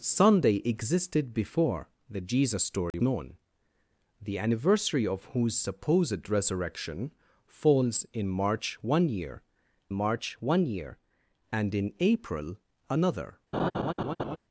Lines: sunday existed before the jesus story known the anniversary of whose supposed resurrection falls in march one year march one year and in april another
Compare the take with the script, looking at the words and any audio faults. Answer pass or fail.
fail